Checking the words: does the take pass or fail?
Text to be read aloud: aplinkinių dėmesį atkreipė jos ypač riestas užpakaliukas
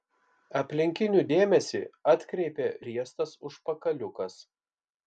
fail